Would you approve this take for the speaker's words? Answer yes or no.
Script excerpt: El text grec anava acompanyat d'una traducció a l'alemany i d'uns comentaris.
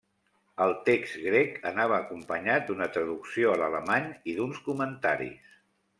yes